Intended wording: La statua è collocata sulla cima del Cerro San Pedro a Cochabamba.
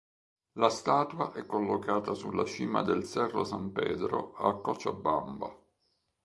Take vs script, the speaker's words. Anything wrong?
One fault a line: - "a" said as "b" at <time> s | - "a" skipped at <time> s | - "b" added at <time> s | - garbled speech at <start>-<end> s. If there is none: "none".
none